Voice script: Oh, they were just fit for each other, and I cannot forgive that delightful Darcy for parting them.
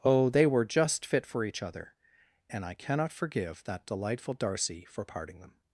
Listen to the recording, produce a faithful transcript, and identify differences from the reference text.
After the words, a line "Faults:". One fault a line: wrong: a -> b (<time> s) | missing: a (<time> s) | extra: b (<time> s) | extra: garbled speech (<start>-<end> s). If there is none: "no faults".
Oh, they were just fit for each other, and I cannot forgive that delightful Darcy for parting them.
Faults:
no faults